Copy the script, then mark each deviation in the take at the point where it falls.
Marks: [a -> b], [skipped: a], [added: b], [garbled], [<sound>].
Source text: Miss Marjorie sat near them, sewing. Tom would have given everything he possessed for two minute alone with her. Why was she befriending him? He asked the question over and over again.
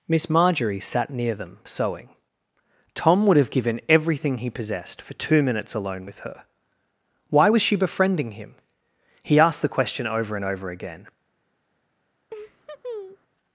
Miss Marjorie sat near them, sewing. Tom would have given everything he possessed for two [minute -> minutes] alone with her. Why was she befriending him? He asked the question over and over again. [laugh]